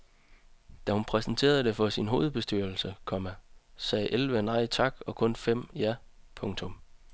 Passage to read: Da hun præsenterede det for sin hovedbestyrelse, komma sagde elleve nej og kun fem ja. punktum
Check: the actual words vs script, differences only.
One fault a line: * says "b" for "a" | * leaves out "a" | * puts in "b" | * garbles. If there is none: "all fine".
* puts in "tak"